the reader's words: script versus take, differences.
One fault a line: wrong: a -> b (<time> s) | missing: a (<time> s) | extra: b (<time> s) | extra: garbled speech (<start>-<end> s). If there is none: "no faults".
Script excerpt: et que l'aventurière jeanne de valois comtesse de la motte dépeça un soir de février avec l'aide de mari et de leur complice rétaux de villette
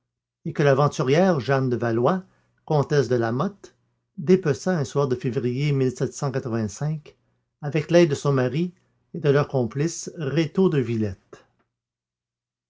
extra: son (8.1 s)